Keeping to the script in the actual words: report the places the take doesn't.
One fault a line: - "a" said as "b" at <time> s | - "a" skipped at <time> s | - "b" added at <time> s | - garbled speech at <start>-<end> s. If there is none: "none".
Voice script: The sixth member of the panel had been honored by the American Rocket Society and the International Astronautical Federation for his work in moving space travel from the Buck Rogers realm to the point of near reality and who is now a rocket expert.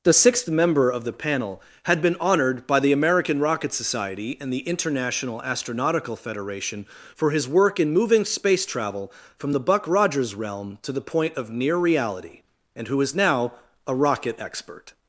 none